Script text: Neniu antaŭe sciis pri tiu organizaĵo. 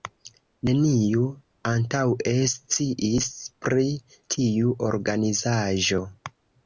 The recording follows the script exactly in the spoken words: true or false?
true